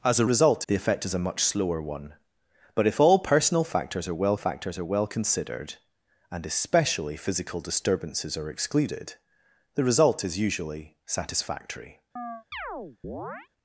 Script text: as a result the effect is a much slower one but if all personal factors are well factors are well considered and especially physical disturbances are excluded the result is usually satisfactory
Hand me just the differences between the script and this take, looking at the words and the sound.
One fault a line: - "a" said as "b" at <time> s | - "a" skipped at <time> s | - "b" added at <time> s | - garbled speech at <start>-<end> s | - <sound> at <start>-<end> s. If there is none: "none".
- chirp at 12.2-13.5 s